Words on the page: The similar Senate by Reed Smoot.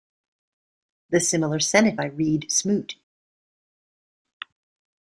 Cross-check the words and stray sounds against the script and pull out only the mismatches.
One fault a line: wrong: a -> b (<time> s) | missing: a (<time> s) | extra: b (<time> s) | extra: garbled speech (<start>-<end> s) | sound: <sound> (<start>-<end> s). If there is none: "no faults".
no faults